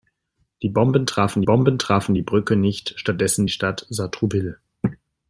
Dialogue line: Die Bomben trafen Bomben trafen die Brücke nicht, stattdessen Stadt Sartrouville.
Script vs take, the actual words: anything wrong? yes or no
no